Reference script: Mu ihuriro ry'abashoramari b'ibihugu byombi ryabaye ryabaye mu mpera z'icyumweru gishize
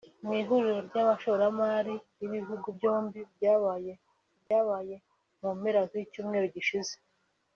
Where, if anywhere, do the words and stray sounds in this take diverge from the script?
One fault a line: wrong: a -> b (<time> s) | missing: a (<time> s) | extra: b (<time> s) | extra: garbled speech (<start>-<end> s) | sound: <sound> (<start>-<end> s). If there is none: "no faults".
sound: dropout (4.5-4.5 s)